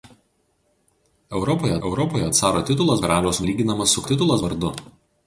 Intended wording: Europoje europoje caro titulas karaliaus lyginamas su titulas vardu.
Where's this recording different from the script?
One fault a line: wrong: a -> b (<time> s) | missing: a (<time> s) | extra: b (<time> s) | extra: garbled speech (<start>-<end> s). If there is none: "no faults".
no faults